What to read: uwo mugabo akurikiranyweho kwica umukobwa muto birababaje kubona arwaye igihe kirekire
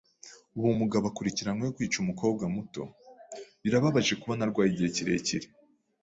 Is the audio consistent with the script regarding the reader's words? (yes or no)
yes